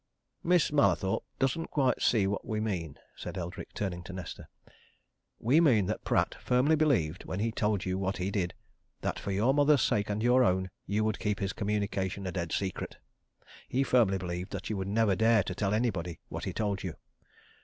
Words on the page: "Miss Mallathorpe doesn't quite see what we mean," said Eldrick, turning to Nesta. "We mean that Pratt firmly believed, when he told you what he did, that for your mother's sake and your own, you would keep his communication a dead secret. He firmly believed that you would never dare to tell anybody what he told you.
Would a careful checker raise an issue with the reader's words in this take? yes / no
no